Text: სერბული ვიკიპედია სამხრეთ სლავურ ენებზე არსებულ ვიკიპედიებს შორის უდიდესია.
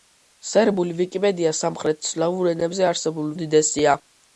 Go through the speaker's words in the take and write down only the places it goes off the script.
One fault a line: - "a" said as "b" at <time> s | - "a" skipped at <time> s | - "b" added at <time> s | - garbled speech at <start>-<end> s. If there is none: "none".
- "ვიკიპედიებს შორის" skipped at 3.3 s